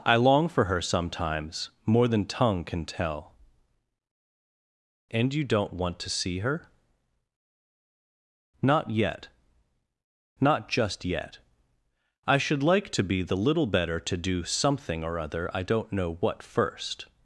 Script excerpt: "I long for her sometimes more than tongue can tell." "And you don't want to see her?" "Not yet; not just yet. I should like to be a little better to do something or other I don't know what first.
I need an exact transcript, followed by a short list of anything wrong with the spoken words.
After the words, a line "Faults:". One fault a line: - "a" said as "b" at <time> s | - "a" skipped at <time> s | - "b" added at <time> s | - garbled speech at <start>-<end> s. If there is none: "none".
"I long for her sometimes more than tongue can tell." "And you don't want to see her?" "Not yet; not just yet. I should like to be the little better to do something or other I don't know what first.
Faults:
- "a" said as "the" at 13.2 s